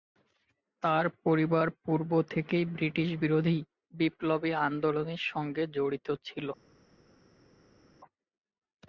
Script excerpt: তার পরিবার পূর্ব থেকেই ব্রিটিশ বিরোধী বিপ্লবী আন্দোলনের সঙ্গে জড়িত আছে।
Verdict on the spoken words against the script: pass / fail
fail